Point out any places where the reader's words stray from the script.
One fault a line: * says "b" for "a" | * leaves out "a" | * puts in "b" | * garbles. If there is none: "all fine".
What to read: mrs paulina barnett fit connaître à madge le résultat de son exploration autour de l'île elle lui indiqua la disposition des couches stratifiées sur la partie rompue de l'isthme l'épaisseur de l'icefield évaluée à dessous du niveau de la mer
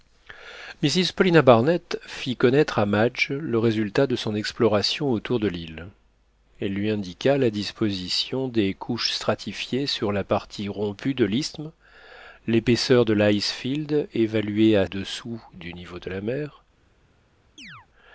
all fine